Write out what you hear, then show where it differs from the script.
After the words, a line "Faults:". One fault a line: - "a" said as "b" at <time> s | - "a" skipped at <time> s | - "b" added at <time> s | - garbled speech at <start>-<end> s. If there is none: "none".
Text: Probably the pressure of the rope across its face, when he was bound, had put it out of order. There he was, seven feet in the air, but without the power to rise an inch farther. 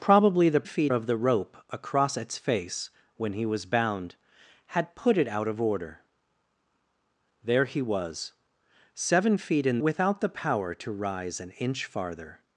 Probably the feet of the rope across its face, when he was bound, had put it out of order. There he was, seven feet in without the power to rise an inch farther.
Faults:
- "pressure" said as "feet" at 0.7 s
- "the air but" skipped at 9.8 s